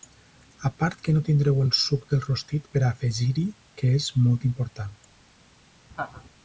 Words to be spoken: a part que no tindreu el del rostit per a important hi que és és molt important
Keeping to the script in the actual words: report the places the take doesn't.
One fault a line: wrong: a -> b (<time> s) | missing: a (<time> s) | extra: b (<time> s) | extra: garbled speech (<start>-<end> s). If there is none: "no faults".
extra: suc (1.8 s)
wrong: important -> afegir (2.9 s)
missing: és (4.1 s)